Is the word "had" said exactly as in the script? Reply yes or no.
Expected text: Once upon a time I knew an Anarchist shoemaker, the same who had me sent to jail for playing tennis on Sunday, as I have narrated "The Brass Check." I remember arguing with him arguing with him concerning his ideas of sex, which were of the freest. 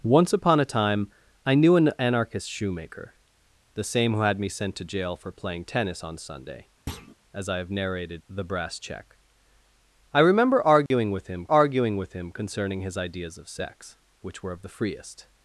yes